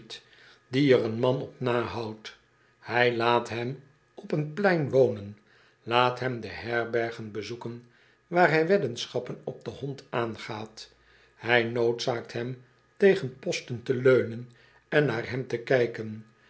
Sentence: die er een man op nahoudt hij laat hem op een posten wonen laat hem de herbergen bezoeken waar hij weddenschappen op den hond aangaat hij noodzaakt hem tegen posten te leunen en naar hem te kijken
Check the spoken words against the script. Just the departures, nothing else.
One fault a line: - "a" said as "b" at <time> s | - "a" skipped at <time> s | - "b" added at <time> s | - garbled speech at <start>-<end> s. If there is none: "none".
- "posten" said as "plein" at 4.5 s